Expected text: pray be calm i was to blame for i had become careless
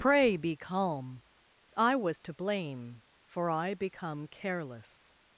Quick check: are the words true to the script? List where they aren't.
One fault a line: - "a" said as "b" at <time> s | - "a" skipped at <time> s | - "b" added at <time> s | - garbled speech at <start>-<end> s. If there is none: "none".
- "had" skipped at 3.7 s